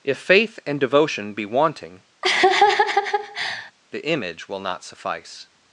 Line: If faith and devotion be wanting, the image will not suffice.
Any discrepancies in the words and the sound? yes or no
yes